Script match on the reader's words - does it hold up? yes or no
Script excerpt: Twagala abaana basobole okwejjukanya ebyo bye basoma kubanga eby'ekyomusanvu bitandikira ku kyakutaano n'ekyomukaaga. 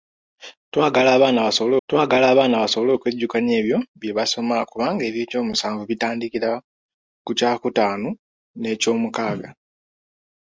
no